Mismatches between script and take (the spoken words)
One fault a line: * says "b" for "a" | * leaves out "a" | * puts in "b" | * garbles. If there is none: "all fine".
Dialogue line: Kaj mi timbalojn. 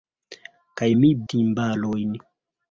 all fine